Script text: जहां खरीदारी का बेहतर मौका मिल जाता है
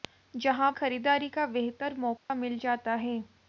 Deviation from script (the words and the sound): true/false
true